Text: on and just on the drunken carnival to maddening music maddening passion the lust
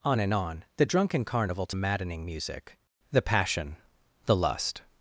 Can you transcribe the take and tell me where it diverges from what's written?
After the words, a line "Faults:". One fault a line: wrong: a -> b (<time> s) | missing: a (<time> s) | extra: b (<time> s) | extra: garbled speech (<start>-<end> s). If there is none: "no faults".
on and on the drunken carnival to maddening music the passion the lust
Faults:
missing: just (0.3 s)
wrong: maddening -> the (3.1 s)